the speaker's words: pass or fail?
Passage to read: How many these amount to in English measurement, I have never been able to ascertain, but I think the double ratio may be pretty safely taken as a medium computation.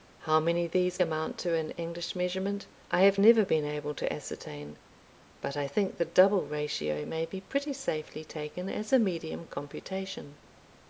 pass